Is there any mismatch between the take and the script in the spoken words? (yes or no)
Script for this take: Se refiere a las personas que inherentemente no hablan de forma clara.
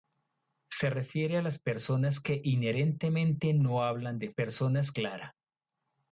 yes